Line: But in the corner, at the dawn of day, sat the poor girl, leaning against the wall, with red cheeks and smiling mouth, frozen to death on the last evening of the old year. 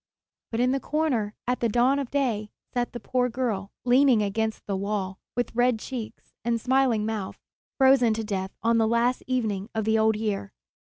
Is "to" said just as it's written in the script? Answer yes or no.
yes